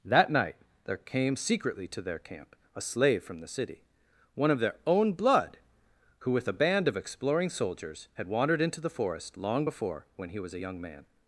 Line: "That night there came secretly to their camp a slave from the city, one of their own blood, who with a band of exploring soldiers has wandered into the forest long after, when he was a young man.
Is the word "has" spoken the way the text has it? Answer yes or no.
no